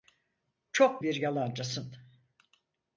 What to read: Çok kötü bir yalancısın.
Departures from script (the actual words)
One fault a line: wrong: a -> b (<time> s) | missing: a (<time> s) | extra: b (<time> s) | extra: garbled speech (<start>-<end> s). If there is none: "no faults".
missing: kötü (1.0 s)